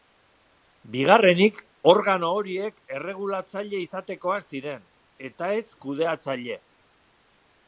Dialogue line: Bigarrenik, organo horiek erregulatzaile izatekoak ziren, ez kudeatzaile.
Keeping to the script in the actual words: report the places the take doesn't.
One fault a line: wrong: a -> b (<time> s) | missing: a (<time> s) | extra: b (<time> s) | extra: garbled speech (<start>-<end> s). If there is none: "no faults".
extra: eta (5.3 s)